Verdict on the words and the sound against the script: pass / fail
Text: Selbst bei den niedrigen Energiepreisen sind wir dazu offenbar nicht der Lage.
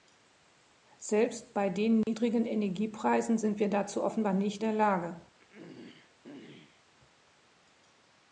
fail